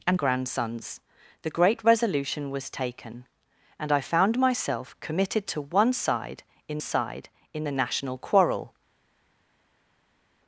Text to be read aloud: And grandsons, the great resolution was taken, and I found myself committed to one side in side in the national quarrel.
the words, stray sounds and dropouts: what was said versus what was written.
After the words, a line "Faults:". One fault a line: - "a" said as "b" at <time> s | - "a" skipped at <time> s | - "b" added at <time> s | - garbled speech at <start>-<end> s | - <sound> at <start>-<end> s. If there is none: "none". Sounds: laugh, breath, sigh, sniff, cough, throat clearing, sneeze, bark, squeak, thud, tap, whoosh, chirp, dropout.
And grandsons, the great resolution was taken, and I found myself committed to one side in side in the national quarrel.
Faults:
none